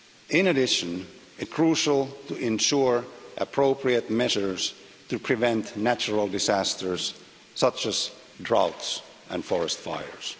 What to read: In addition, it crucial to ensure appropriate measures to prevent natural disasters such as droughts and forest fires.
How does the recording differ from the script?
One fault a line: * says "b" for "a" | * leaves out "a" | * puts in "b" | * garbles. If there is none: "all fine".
all fine